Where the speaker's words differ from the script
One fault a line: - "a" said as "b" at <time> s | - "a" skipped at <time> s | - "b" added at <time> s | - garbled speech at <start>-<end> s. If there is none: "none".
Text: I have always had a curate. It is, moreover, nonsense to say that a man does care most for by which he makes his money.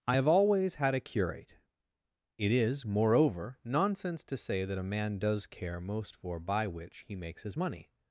none